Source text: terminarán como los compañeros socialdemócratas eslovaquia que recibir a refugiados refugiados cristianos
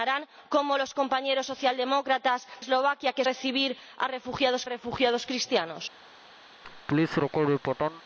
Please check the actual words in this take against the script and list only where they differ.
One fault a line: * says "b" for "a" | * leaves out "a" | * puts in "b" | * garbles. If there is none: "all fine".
all fine